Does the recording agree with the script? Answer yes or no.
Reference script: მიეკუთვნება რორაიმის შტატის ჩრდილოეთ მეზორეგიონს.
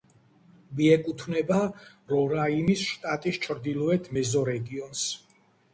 yes